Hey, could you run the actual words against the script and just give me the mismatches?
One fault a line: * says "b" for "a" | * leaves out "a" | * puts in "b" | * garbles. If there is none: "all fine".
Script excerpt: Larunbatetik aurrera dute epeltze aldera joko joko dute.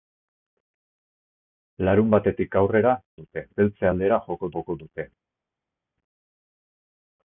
all fine